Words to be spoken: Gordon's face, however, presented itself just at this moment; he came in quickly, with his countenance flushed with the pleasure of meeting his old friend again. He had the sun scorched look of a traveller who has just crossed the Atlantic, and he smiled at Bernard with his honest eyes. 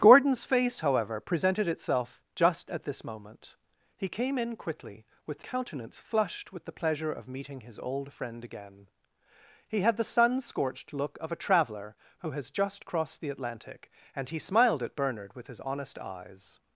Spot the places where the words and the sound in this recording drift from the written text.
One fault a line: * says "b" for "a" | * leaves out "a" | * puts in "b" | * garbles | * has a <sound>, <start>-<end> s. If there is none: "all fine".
* leaves out "his"